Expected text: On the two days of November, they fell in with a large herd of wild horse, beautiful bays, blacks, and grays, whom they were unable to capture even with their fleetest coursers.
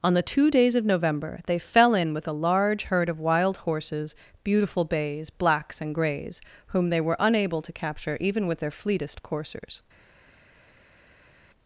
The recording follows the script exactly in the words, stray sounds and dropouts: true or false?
false